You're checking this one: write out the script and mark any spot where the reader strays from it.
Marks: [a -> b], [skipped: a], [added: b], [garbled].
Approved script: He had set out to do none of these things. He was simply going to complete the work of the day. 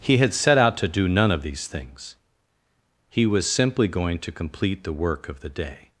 He had set out to do none of these things. He was simply going to complete the work of the day.